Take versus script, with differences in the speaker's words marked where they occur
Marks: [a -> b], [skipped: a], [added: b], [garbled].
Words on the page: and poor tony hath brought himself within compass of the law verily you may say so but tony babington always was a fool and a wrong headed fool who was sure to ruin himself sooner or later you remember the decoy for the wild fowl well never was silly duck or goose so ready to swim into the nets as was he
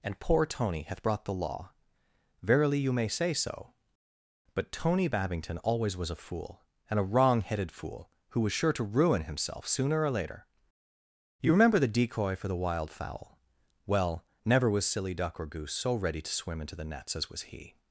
and poor tony hath brought [skipped: himself within compass of] the law verily you may say so but tony babington always was a fool and a wrong headed fool who was sure to ruin himself sooner or later you remember the decoy for the wild fowl well never was silly duck or goose so ready to swim into the nets as was he